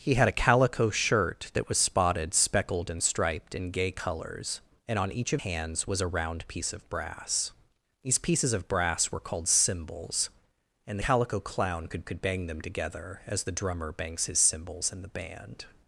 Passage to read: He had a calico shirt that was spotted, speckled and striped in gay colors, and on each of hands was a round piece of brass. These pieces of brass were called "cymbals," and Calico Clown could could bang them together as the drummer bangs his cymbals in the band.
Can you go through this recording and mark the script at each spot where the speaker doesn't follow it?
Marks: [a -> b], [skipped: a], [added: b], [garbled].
He had a calico shirt that was spotted, speckled and striped in gay colors, and on each of hands was a round piece of brass. These pieces of brass were called "cymbals," and Calico Clown could could bang them together as the drummer bangs his cymbals in the band.